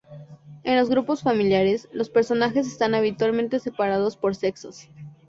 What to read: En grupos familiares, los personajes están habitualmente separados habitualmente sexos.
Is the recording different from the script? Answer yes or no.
yes